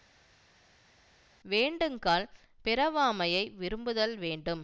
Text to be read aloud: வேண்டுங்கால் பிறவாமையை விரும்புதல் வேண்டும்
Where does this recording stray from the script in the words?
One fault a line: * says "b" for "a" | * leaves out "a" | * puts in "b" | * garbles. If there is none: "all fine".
all fine